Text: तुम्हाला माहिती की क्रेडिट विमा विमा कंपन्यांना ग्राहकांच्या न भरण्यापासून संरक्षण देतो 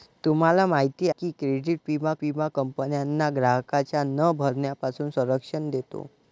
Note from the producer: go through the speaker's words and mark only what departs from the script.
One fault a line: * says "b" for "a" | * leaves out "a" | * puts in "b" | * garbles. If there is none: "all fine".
all fine